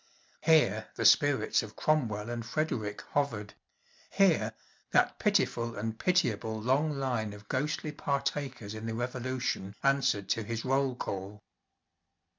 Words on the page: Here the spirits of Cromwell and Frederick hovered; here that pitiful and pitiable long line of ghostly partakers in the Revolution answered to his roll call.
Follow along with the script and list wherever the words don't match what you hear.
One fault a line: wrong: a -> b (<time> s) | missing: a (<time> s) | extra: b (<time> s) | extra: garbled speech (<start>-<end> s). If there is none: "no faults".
no faults